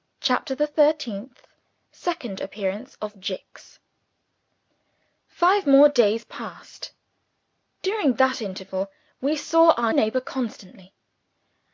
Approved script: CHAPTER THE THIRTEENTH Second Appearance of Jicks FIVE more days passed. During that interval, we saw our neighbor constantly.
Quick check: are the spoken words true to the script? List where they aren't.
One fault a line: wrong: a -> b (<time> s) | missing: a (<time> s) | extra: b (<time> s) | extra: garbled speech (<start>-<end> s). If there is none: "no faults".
no faults